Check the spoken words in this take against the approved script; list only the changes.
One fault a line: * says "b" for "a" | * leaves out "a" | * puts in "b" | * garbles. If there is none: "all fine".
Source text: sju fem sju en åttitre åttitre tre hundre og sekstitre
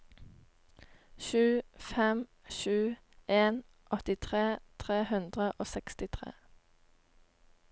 * leaves out "åttitre"